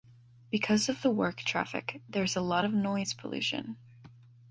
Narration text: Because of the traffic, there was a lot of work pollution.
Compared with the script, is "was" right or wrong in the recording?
wrong